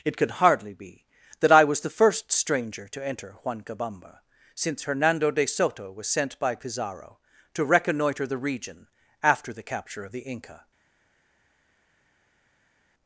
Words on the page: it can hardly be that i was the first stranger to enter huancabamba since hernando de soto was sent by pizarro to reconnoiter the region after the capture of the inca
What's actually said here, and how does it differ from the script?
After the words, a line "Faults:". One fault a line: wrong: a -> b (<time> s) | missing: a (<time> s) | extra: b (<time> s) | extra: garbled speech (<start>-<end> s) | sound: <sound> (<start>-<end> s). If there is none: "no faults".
it could hardly be that i was the first stranger to enter huancabamba since hernando de soto was sent by pizarro to reconnoiter the region after the capture of the inca
Faults:
wrong: can -> could (0.2 s)